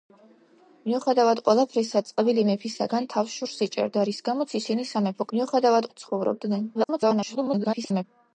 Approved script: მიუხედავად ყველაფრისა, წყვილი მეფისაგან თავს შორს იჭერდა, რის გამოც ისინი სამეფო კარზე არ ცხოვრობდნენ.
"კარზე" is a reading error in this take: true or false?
true